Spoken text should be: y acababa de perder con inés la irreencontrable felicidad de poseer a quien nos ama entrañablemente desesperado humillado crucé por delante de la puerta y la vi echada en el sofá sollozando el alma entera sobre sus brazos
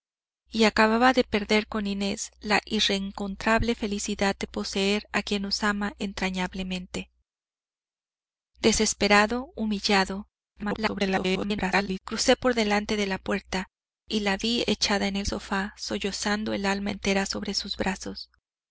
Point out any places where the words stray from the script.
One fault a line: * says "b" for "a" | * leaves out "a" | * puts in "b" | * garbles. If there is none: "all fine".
* garbles